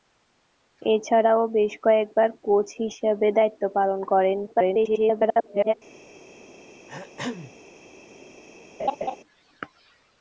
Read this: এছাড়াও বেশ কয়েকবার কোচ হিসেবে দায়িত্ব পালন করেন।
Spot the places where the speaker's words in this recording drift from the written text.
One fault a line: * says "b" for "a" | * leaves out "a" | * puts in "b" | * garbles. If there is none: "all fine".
* garbles